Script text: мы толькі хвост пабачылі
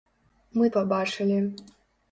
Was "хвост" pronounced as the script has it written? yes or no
no